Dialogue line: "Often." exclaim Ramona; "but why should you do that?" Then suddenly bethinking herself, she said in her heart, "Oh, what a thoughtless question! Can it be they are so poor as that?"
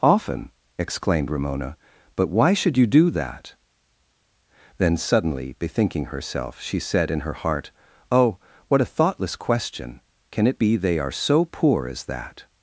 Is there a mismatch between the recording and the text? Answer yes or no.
yes